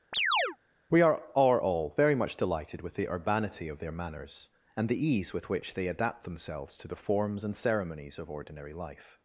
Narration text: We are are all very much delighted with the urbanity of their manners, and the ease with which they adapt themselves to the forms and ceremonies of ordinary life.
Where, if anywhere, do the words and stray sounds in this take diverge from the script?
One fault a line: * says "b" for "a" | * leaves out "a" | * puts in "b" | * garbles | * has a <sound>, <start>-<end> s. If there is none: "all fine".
* has a chirp, 0.1-0.6 s